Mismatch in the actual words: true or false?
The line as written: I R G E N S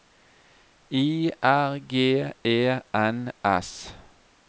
false